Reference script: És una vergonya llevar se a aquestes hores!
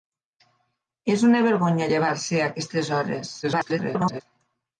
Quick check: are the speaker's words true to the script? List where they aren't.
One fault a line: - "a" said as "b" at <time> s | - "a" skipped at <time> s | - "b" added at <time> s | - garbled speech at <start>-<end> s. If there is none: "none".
- garbled speech at 3.4-4.2 s